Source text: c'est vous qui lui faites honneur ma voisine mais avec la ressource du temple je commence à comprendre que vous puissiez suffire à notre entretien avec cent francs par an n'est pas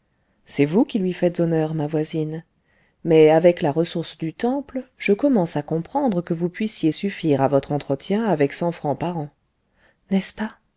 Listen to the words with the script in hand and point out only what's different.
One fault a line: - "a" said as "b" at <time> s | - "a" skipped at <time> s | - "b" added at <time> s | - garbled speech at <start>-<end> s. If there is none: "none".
- "notre" said as "votre" at 7.5 s
- "ce" added at 10.2 s